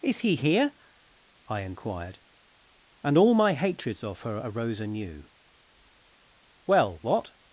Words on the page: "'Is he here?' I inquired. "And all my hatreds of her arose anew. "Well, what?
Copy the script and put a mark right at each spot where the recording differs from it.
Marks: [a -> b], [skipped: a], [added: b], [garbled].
"'Is he here?' I inquired. "And all my hatreds of her arose anew. "Well, what?